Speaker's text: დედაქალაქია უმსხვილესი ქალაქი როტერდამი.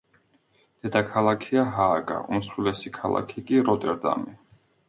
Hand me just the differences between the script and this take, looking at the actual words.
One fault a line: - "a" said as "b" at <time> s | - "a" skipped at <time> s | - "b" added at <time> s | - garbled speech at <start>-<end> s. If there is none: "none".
- "ჰააგა" added at 1.8 s
- "კი" added at 3.5 s